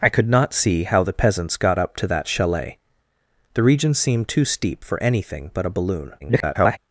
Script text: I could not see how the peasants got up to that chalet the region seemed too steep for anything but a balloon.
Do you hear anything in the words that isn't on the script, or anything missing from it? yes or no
yes